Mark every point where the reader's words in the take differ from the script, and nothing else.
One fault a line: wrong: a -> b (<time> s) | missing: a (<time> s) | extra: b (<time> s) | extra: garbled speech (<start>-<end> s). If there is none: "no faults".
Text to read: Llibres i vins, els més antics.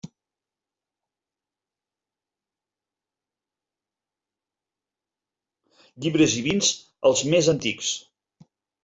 no faults